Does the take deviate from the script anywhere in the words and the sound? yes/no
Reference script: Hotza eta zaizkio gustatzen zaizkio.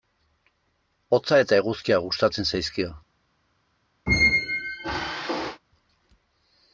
yes